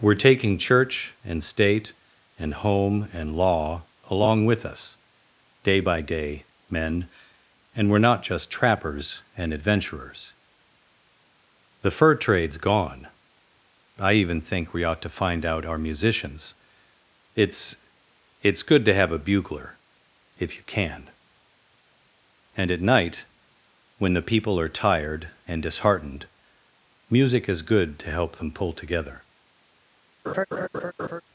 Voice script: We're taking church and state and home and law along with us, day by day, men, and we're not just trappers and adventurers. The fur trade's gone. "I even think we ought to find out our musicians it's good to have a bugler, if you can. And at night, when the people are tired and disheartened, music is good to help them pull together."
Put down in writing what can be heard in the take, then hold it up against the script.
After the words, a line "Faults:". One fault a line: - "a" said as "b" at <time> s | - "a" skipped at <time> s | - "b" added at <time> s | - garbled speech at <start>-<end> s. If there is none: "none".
We're taking church and state and home and law along with us, day by day, men, and we're not just trappers and adventurers. The fur trade's gone. "I even think we ought to find out our musicians it's it's good to have a bugler, if you can. And at night, when the people are tired and disheartened, music is good to help them pull together."
Faults:
- "it's" added at 18.4 s